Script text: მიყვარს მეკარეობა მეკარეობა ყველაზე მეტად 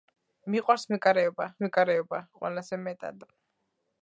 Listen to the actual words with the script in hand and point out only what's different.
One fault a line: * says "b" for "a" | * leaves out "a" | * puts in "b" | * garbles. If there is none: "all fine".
all fine